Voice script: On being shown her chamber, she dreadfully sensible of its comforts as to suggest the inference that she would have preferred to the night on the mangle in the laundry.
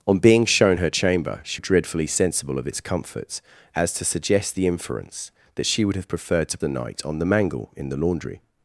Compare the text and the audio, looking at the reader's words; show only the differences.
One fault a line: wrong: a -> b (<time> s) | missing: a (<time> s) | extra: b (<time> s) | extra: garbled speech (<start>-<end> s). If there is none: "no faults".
no faults